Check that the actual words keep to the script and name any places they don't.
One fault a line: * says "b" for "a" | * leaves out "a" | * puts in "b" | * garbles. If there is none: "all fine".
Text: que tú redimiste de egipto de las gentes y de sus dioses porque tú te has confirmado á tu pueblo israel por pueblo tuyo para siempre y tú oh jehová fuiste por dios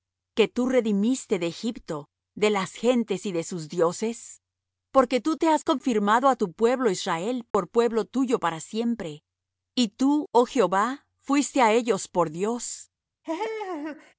* puts in "á ellos"